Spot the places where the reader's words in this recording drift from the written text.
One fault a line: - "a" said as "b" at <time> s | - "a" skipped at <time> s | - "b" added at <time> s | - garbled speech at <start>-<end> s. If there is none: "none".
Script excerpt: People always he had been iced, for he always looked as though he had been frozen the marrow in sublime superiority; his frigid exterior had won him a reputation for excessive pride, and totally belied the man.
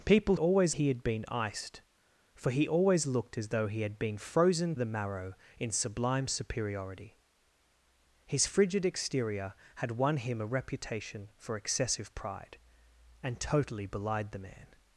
none